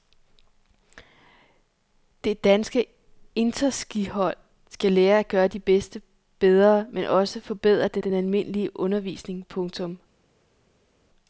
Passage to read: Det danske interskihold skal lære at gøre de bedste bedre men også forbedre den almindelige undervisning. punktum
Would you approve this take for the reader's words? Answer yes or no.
no